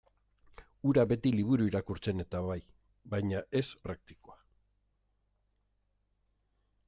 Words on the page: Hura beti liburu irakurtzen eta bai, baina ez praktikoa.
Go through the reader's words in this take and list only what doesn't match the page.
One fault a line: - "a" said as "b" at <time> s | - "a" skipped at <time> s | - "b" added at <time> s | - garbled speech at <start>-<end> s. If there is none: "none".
none